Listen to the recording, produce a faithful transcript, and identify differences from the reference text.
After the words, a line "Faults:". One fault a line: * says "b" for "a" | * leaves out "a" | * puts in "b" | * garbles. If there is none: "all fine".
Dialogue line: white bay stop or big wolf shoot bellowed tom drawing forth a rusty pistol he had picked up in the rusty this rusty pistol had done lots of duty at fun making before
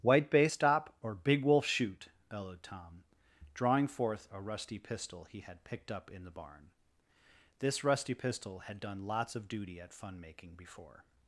white bay stop or big wolf shoot bellowed tom drawing forth a rusty pistol he had picked up in the barn this rusty pistol had done lots of duty at fun making before
Faults:
* says "barn" for "rusty"